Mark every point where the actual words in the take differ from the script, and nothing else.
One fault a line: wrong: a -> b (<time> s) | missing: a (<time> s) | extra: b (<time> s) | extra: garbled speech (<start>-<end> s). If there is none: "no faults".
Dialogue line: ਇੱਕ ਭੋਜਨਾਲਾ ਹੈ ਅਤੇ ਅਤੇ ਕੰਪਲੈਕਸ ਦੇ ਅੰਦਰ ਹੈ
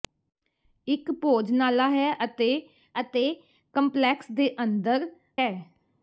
no faults